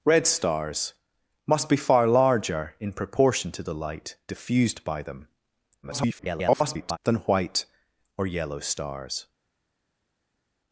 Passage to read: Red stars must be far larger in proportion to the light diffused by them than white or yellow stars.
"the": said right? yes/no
yes